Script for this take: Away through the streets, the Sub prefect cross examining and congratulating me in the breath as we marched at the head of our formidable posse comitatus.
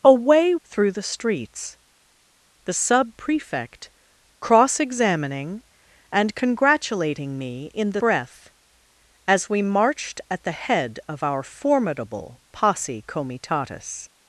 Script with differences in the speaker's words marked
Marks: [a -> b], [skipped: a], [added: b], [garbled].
Away through the streets, the Sub prefect cross examining and congratulating me in the breath as we marched at the head of our formidable posse comitatus.